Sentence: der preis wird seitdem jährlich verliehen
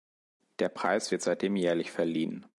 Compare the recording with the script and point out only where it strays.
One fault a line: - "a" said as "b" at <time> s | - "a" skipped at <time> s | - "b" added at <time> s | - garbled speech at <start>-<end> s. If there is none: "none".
none